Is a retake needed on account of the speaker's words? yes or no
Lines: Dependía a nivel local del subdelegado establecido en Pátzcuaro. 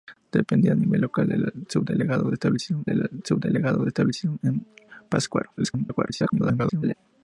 yes